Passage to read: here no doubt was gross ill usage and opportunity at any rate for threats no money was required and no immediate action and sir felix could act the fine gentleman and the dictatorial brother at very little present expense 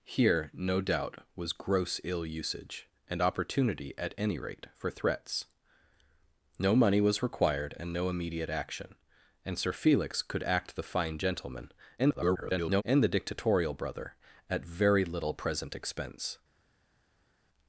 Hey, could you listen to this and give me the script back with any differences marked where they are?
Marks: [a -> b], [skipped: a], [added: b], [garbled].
here no doubt was gross ill usage and opportunity at any rate for threats no money was required and no immediate action and sir felix could act the fine gentleman [garbled] and the dictatorial brother at very little present expense